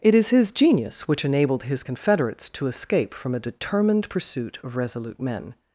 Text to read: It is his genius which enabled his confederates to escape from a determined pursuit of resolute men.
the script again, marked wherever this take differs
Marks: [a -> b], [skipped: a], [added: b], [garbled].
It is his genius which enabled his confederates to escape from a determined pursuit of resolute men.